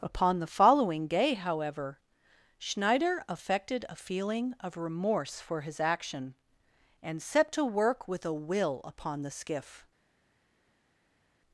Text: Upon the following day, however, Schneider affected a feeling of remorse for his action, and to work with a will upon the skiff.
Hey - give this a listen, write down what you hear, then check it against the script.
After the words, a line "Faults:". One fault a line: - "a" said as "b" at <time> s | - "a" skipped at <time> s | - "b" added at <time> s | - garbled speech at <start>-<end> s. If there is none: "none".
Upon the following day, however, Schneider affected a feeling of remorse for his action, and set to work with a will upon the skiff.
Faults:
- "set" added at 7.2 s